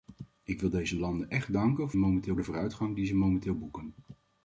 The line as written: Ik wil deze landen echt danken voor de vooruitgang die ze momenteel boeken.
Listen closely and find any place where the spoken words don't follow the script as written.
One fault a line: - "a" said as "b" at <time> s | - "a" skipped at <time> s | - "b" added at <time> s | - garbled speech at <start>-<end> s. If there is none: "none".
- "voor" said as "momenteel" at 2.0 s